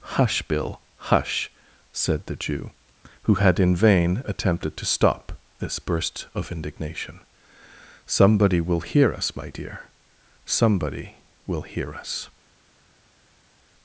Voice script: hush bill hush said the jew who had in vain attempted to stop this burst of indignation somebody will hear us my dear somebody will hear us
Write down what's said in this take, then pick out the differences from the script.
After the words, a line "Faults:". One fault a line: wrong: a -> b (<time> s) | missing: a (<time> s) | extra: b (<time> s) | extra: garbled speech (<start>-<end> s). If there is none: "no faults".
hush bill hush said the jew who had in vain attempted to stop this burst of indignation somebody will hear us my dear somebody will hear us
Faults:
no faults